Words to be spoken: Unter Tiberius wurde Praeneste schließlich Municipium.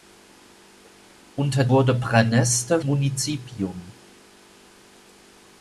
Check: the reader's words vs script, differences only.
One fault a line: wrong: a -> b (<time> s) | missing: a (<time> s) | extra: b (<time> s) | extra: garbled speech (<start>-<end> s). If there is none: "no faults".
missing: Tiberius (1.7 s)
missing: schließlich (2.8 s)